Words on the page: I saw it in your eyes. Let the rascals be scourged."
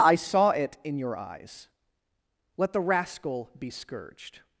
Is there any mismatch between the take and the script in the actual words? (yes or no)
yes